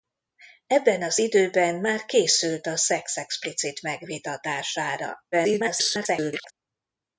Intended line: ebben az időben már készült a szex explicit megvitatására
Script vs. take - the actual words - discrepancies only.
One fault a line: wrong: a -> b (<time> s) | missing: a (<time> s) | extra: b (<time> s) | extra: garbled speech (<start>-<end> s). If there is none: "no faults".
extra: garbled speech (5.3-6.5 s)